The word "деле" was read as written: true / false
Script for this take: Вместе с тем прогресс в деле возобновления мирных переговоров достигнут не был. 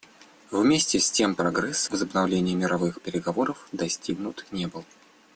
false